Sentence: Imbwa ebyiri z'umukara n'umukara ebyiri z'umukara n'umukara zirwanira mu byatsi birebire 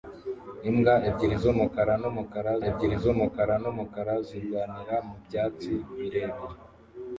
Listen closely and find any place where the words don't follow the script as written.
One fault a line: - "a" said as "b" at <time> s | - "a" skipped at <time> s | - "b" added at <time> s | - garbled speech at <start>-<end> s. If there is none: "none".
none